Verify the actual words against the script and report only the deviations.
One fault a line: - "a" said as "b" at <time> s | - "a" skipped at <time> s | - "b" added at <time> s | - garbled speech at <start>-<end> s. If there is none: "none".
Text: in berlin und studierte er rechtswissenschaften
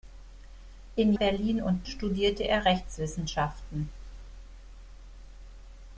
none